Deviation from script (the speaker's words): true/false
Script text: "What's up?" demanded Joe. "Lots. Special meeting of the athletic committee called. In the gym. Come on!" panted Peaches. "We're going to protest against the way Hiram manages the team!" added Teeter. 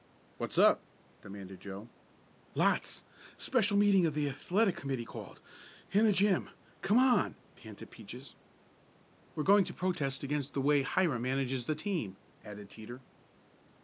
false